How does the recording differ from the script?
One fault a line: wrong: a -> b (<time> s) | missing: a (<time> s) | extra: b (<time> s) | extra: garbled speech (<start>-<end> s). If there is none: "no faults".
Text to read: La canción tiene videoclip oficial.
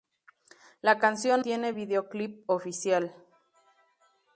no faults